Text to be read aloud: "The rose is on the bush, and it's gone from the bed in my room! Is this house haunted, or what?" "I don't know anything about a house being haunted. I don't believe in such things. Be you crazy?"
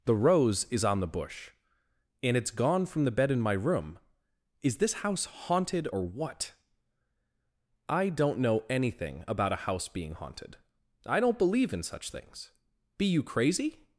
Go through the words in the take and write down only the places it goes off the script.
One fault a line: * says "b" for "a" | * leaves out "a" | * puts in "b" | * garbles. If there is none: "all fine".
all fine